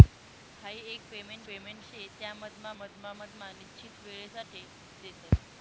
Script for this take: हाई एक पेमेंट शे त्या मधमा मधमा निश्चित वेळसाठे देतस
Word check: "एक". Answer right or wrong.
right